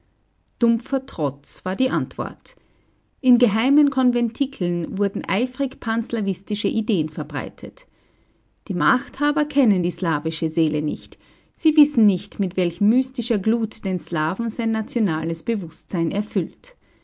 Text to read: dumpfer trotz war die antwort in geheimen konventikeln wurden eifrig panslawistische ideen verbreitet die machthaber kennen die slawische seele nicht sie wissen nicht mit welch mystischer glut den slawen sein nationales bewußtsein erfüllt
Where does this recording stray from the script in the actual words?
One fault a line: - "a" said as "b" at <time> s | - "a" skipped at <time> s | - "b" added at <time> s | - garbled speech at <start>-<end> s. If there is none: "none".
none